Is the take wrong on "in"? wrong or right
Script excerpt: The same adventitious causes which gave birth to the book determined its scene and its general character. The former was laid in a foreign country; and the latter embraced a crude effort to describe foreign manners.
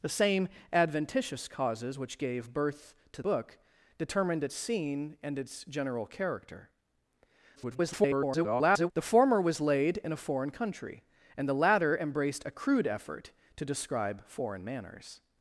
right